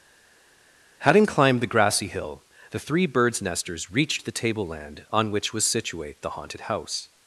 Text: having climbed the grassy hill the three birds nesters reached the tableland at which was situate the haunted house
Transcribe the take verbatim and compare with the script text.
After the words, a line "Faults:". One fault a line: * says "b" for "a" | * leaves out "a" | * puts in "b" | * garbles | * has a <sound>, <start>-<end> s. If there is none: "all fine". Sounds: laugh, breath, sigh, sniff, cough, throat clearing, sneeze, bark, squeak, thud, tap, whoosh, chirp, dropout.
having climbed the grassy hill the three birds nesters reached the tableland on which was situate the haunted house
Faults:
* says "on" for "at"